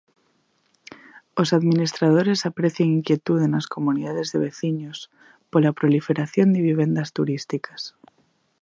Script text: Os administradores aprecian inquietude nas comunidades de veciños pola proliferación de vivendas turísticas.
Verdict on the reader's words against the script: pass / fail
pass